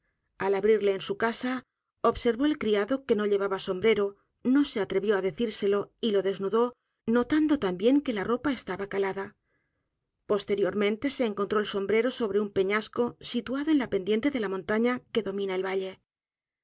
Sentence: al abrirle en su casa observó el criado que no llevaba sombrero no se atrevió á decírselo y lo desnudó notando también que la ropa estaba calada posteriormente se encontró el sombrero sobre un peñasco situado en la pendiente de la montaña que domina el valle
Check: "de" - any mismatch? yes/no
no